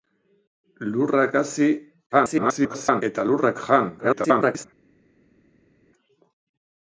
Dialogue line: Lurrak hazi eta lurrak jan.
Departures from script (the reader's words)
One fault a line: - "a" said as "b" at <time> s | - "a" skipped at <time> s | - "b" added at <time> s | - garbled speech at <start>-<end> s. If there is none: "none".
- garbled speech at 2.1-3.0 s
- garbled speech at 4.0-4.7 s